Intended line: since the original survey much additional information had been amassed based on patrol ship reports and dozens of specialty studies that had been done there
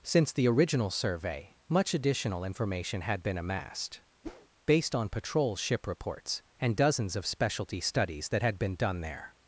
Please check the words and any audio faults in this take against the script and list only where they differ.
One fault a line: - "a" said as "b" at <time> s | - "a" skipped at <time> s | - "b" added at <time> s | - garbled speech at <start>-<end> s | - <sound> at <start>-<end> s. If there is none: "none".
- whoosh at 4.2-4.5 s